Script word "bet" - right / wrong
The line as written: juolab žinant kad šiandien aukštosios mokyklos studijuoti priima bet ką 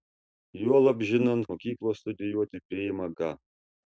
wrong